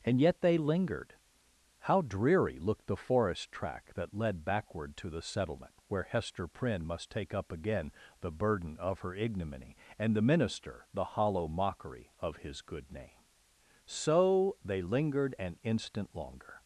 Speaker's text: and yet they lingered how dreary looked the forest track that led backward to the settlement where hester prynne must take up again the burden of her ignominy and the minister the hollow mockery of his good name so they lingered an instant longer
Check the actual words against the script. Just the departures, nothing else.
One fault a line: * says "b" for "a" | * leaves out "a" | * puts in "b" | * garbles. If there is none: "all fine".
all fine